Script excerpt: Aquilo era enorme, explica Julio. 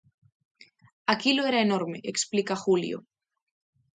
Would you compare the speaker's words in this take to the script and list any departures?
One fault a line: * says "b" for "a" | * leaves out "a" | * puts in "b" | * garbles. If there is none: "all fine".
all fine